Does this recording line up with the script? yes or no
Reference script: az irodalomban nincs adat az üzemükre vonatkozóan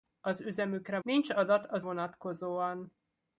no